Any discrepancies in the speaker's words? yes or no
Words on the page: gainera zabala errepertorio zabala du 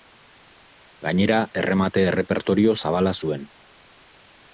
yes